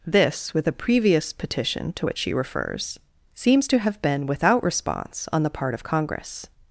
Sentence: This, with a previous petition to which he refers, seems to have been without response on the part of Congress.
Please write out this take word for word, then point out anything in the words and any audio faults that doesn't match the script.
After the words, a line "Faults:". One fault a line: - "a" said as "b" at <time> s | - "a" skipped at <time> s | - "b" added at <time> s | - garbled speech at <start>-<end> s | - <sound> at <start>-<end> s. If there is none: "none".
This, with a previous petition to which she refers, seems to have been without response on the part of Congress.
Faults:
- "he" said as "she" at 2.2 s